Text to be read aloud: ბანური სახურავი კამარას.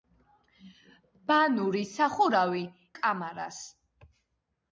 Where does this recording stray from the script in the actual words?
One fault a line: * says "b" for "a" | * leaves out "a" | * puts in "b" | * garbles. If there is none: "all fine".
all fine